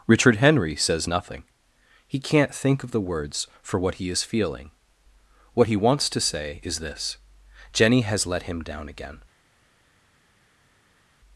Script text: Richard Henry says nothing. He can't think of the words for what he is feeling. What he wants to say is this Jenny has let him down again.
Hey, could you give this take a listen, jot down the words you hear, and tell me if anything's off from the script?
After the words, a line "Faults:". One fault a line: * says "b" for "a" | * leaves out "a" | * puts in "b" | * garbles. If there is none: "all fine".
Richard Henry says nothing. He can't think of the words for what he is feeling. What he wants to say is this Jenny has let him down again.
Faults:
all fine